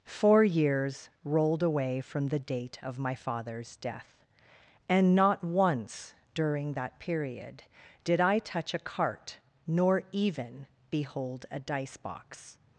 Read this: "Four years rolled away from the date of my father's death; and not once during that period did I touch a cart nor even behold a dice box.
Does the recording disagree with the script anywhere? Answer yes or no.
no